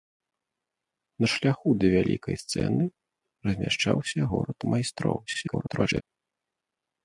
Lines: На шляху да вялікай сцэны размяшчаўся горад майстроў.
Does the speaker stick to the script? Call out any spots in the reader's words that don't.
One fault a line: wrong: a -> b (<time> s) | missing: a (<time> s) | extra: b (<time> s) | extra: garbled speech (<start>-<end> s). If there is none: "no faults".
extra: garbled speech (5.3-6.0 s)